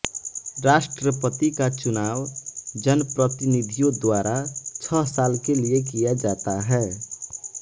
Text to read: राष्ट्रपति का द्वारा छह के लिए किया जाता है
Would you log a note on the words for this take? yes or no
yes